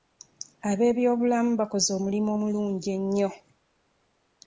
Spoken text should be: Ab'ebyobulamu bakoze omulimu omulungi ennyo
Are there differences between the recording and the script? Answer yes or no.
no